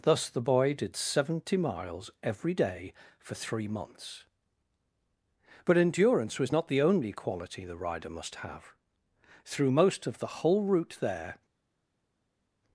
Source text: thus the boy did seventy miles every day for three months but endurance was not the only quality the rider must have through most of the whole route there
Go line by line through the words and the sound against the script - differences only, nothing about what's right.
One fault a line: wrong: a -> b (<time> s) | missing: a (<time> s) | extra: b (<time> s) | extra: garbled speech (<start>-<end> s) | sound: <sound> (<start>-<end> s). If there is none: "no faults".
no faults